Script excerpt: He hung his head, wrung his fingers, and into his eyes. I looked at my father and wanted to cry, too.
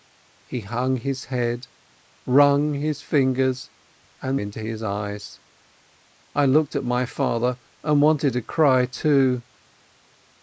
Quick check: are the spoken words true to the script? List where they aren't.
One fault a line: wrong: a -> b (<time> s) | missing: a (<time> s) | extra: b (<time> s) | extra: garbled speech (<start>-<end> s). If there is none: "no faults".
no faults